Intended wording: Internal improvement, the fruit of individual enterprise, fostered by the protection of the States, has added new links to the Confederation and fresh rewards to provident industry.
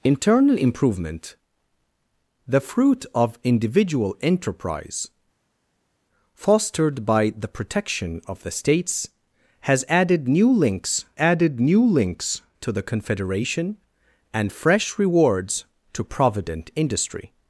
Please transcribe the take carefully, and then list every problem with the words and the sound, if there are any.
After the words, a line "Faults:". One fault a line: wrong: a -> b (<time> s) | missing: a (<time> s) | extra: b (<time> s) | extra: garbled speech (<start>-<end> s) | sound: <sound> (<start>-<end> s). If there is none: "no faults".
Internal improvement, the fruit of individual enterprise, fostered by the protection of the States, has added new links added new links to the Confederation and fresh rewards to provident industry.
Faults:
extra: added new links (11.2 s)